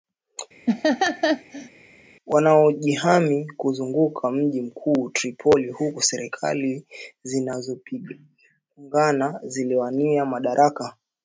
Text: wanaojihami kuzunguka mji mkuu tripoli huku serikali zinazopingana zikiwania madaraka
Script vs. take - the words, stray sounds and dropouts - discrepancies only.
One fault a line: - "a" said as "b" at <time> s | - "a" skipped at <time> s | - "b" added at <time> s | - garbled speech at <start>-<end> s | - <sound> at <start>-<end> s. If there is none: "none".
- laugh at 0.7-1.7 s